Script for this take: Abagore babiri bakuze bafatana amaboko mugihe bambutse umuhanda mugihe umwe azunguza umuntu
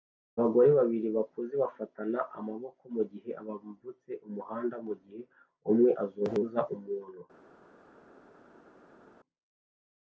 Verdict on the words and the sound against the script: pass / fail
pass